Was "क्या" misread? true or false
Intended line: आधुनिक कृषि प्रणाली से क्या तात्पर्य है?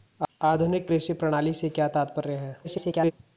false